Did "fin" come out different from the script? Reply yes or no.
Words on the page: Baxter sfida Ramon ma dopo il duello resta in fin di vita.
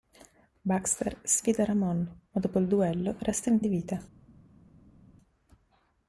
yes